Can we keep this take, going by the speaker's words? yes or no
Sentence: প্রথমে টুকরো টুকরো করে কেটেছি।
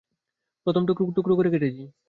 yes